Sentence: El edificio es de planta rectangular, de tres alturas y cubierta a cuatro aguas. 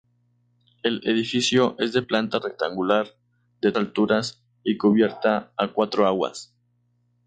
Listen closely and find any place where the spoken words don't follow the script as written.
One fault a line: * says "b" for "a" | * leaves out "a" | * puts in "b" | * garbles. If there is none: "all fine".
* leaves out "tres"